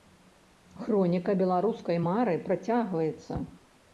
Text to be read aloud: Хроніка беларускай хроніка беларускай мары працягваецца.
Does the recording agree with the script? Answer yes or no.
no